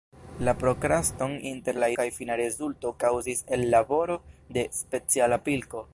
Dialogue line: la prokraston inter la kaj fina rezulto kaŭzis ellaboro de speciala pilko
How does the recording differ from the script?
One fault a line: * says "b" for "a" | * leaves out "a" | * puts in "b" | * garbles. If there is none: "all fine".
all fine